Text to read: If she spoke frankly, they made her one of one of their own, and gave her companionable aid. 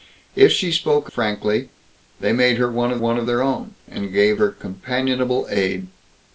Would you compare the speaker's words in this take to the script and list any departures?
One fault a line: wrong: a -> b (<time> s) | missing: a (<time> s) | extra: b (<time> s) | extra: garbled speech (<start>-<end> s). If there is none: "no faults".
no faults